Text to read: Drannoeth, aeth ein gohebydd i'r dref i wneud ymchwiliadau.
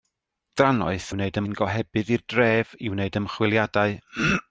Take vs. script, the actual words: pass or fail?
fail